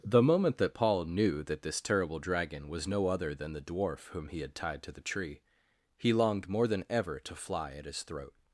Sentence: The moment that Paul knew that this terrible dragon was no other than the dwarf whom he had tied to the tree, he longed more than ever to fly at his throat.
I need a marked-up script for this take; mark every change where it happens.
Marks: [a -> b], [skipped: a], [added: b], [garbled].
The moment that Paul knew that this terrible dragon was no other than the dwarf whom he had tied to the tree, he longed more than ever to fly at his throat.